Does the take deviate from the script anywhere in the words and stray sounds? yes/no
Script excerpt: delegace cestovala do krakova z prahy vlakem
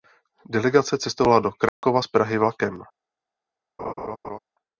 yes